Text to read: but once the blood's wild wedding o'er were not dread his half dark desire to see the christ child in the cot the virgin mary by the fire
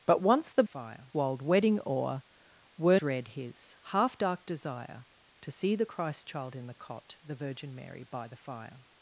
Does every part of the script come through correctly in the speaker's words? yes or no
no